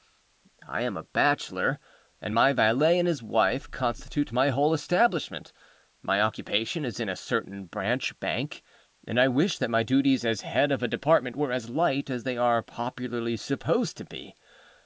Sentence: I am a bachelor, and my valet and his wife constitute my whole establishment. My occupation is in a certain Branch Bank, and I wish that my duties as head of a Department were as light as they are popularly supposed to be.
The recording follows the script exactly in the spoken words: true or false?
true